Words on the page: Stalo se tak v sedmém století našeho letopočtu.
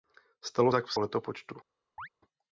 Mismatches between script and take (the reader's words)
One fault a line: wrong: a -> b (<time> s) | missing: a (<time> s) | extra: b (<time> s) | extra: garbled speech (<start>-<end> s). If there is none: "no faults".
missing: se (0.7 s)
missing: sedmém století našeho (0.9 s)